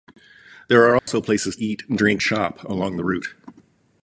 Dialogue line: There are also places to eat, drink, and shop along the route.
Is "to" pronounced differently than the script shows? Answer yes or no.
yes